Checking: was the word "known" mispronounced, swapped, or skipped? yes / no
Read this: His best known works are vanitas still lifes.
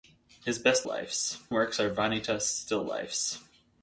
yes